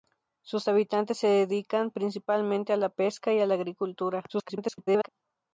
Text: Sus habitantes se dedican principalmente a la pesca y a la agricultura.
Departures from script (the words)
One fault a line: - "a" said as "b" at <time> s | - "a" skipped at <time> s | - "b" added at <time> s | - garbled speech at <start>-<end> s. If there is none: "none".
- garbled speech at 4.3-5.1 s